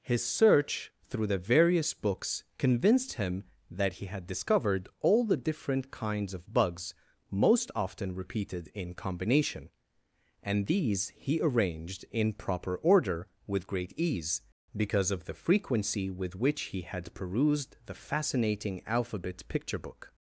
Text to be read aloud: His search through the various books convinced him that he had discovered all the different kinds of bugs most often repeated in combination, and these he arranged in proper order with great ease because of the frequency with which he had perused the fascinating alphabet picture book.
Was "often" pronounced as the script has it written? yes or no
yes